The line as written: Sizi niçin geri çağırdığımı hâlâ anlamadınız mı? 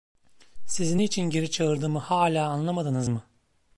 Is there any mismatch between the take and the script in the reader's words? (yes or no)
no